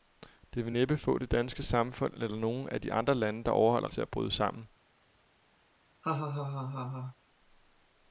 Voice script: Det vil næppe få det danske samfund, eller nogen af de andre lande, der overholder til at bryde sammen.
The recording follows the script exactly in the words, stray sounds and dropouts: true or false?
false